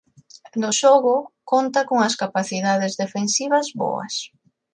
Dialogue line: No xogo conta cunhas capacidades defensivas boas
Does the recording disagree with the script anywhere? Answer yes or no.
no